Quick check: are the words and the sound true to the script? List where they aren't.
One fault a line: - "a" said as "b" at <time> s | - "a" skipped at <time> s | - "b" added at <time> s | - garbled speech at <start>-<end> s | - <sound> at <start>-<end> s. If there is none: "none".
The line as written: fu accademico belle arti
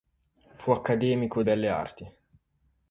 none